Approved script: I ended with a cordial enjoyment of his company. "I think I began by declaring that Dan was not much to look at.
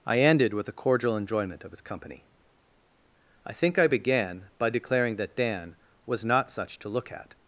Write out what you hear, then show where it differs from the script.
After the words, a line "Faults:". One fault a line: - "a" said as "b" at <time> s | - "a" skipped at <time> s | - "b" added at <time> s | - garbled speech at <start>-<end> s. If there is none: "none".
I ended with a cordial enjoyment of his company. "I think I began by declaring that Dan was not such to look at.
Faults:
- "much" said as "such" at 6.5 s